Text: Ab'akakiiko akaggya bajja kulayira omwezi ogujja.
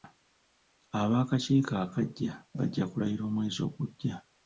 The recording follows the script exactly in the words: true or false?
true